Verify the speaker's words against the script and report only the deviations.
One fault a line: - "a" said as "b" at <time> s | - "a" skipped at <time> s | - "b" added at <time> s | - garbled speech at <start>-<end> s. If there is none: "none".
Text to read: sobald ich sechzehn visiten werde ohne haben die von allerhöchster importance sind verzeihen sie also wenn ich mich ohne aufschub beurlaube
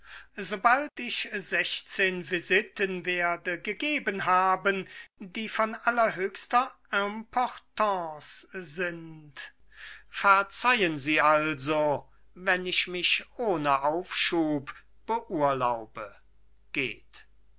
- "ohne" said as "gegeben" at 3.6 s